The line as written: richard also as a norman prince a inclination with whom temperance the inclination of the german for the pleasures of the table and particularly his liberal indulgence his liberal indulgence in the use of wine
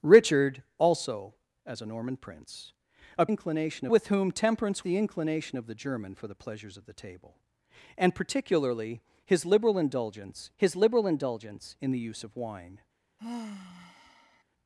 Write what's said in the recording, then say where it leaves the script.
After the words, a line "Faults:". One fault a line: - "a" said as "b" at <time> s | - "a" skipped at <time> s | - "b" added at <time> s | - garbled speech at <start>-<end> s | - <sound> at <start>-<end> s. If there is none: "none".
richard also as a norman prince a inclination with whom temperance the inclination of the german for the pleasures of the table and particularly his liberal indulgence his liberal indulgence in the use of wine
Faults:
- sigh at 13.2-14.4 s